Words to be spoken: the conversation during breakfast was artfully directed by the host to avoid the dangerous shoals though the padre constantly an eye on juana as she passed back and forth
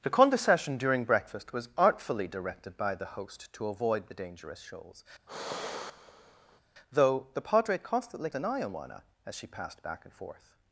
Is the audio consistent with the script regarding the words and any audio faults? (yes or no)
no